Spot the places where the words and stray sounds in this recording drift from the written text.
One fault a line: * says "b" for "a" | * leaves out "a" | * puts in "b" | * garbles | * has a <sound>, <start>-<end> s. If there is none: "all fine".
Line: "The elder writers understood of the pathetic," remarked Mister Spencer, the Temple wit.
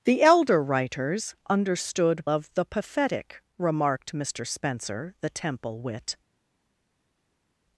all fine